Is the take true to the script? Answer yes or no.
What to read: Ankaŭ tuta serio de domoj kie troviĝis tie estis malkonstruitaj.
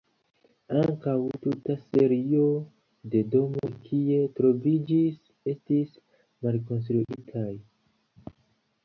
no